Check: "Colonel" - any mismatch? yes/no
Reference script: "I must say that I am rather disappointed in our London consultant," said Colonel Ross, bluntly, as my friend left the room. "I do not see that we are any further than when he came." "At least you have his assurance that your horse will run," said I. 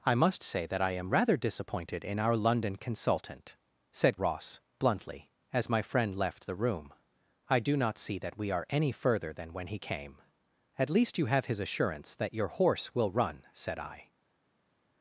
yes